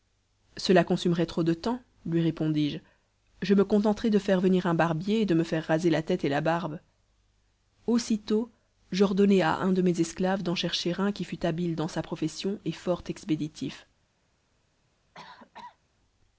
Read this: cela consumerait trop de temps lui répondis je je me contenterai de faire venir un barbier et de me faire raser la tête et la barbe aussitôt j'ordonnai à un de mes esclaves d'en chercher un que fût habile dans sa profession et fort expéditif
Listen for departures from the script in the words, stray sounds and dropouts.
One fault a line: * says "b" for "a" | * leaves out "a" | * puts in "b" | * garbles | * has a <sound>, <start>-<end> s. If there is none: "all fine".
* says "qui" for "que"
* has a cough, 15.1-15.8 s